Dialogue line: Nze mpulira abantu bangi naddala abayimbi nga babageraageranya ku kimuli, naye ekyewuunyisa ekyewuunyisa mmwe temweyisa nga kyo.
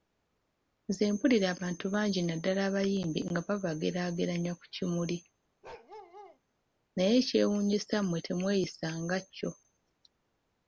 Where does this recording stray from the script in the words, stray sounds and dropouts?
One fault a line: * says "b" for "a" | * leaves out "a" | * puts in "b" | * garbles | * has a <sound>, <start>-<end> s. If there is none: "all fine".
* has a bark, 5.6-6.4 s
* leaves out "ekyewuunyisa"